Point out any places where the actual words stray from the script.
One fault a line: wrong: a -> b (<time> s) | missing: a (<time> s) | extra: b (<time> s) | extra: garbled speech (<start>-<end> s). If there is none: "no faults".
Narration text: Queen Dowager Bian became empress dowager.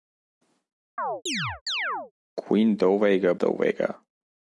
missing: Bian became empress (3.4 s)